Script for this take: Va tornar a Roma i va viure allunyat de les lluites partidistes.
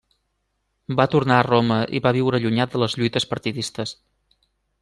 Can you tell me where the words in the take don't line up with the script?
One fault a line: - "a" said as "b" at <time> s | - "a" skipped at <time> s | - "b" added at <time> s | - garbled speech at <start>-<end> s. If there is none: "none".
none